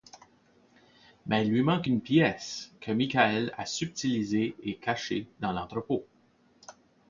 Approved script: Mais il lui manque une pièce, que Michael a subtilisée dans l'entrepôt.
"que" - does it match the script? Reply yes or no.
yes